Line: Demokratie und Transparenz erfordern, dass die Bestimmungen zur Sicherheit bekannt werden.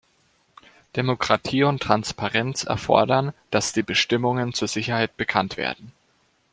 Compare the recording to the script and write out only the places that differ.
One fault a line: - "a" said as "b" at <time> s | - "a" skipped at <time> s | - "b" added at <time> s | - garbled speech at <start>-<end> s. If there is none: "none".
none